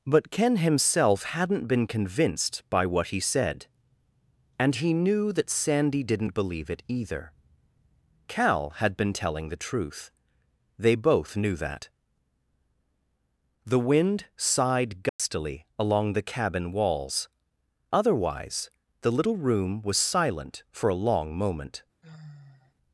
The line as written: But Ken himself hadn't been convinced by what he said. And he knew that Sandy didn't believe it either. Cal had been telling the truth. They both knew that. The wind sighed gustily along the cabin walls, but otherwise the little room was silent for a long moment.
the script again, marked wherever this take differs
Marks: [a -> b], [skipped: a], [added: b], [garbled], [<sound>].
But Ken himself hadn't been convinced by what he said. And he knew that Sandy didn't believe it either. Cal had been telling the truth. They both knew that. The wind sighed gustily [dropout] along the cabin walls, [skipped: but] otherwise the little room was silent for a long moment. [sigh]